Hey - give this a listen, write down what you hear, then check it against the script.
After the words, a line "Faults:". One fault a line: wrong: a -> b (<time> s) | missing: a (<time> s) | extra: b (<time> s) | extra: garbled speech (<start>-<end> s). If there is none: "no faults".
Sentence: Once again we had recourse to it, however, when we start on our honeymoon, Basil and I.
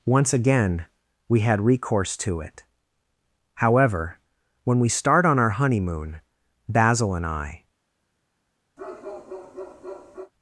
Once again we had recourse to it, however, when we start on our honeymoon, Basil and I.
Faults:
no faults